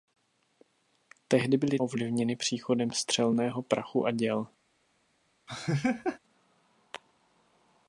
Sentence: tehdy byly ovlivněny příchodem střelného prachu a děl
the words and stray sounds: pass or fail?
fail